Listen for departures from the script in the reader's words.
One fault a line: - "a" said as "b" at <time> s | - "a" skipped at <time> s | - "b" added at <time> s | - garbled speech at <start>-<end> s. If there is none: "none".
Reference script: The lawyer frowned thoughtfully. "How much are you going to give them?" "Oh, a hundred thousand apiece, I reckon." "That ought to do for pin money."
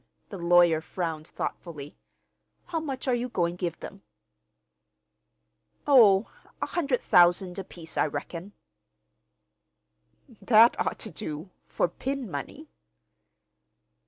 - "to" skipped at 3.6 s